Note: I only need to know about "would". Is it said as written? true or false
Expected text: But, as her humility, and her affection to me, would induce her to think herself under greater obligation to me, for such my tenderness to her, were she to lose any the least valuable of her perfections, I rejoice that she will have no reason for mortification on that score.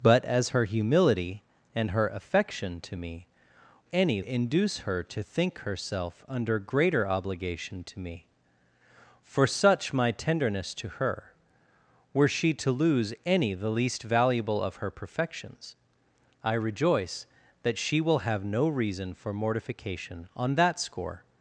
false